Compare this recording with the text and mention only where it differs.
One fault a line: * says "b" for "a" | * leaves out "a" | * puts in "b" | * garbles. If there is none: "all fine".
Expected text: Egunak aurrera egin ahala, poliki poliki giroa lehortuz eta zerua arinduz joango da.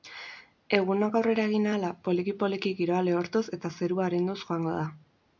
all fine